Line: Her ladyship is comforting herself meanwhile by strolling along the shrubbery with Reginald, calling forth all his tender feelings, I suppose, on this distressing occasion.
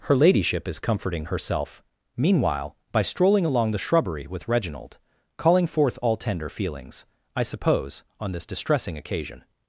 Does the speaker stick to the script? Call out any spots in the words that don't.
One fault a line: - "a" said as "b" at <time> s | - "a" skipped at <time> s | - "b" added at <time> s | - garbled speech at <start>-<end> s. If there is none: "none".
- "his" skipped at 6.2 s